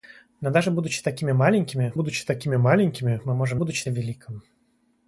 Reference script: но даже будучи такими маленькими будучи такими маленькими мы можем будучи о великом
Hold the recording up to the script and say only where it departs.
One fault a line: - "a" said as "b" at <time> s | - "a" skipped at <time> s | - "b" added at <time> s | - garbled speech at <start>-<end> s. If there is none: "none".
none